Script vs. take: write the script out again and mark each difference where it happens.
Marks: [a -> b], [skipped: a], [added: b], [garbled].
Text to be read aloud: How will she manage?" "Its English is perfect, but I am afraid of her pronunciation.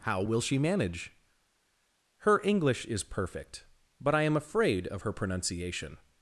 How will she manage?" ["Its -> Her] English is perfect, but I am afraid of her pronunciation.